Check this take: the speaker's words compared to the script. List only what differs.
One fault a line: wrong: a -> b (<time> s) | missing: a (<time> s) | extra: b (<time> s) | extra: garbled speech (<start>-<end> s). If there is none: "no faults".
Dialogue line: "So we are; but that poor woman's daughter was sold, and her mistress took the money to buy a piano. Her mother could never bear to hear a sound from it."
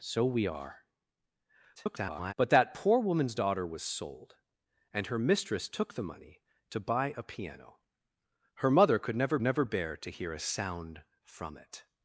extra: garbled speech (1.8-2.3 s)
extra: never (9.4 s)